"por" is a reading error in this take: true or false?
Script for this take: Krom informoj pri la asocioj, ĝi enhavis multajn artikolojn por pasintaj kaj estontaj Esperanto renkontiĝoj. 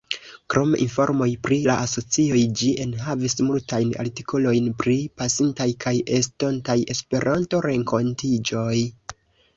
true